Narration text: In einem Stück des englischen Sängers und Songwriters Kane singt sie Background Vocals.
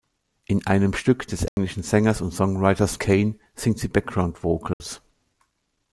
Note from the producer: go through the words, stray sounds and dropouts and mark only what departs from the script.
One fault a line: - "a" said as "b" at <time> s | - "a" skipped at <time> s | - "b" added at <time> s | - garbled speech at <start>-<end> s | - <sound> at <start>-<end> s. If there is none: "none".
- dropout at 1.5-1.6 s
- dropout at 4.7-4.8 s